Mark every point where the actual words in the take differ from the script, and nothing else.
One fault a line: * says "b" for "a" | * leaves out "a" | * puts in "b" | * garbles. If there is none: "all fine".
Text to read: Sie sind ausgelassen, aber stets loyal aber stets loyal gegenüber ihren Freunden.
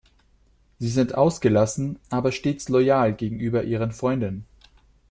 * leaves out "aber stets loyal"